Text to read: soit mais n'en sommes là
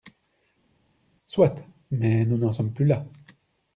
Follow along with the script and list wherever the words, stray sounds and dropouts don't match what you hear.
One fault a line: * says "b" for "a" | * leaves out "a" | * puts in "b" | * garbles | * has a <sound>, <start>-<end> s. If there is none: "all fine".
* puts in "nous"
* puts in "plus"